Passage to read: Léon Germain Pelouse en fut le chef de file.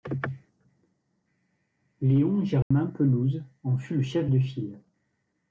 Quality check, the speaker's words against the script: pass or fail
pass